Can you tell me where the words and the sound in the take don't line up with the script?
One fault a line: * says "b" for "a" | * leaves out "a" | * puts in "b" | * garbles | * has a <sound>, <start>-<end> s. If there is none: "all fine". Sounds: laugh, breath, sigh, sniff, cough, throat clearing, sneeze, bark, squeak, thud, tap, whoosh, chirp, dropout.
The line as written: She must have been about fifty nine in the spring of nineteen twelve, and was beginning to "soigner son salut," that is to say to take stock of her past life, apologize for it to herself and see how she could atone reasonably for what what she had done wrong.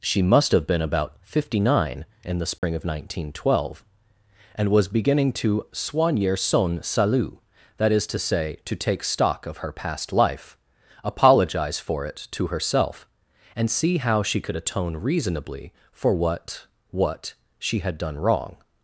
* has a dropout, 2.6-2.6 s